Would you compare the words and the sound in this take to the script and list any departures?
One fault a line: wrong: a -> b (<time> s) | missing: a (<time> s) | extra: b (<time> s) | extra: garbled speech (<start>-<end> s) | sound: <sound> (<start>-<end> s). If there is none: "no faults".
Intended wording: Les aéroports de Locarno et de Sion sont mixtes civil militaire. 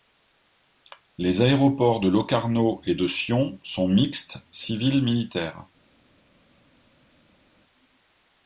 no faults